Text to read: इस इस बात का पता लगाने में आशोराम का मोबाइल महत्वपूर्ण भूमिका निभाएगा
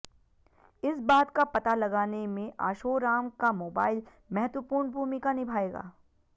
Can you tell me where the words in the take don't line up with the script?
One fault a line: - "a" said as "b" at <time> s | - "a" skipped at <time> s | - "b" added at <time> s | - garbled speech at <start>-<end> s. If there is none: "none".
- "इस" skipped at 1.0 s